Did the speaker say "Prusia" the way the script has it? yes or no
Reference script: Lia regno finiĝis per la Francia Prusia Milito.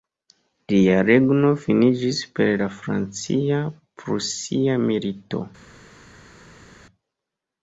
yes